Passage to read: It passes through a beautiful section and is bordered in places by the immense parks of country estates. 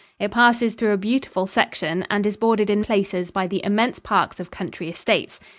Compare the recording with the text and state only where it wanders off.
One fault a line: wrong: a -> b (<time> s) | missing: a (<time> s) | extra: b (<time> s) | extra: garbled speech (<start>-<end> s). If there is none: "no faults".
no faults